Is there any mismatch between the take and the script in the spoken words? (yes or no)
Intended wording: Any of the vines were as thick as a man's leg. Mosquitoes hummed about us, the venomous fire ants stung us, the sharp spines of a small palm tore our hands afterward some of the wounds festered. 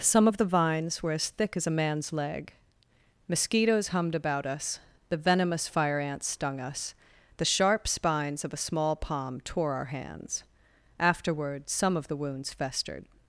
yes